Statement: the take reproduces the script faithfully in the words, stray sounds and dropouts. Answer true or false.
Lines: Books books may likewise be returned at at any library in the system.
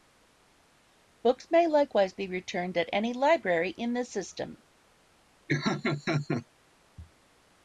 false